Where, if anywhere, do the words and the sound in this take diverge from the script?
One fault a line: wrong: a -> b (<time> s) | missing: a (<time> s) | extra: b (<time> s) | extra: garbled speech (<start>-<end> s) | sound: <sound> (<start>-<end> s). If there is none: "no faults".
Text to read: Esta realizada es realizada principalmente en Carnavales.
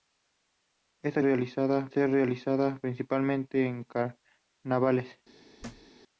sound: thud (5.6-5.9 s)